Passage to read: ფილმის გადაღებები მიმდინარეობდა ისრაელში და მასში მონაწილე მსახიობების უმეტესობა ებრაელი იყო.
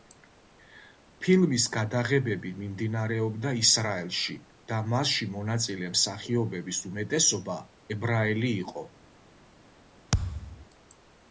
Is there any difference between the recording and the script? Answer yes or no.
no